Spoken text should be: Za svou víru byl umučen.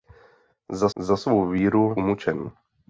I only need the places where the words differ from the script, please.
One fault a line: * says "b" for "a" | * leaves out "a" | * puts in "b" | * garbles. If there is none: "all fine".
* puts in "za"
* leaves out "byl"